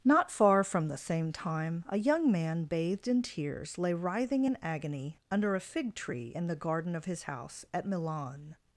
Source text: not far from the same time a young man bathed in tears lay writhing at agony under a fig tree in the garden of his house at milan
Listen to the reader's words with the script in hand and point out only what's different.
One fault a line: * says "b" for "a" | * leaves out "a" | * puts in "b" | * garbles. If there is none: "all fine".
* says "in" for "at"